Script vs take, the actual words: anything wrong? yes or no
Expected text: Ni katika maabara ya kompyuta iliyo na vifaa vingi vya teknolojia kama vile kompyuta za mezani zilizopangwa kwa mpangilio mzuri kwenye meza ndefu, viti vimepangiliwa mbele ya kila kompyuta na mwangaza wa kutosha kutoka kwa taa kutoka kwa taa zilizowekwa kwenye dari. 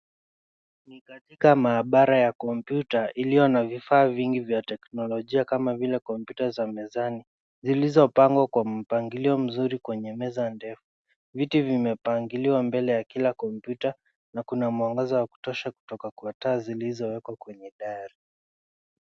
yes